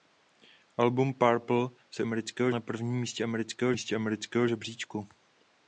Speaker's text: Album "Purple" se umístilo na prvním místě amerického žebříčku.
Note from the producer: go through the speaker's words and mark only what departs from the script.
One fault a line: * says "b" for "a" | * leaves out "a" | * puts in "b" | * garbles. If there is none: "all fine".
* says "amerického" for "umístilo"
* puts in "místě amerického"